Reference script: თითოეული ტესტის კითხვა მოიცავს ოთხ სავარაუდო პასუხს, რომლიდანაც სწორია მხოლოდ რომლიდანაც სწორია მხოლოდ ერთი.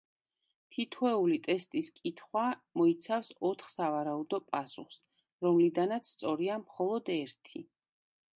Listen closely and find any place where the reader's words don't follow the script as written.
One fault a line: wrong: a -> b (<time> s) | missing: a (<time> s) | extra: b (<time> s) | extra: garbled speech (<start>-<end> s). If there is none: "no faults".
missing: რომლიდანაც სწორია მხოლოდ (7.1 s)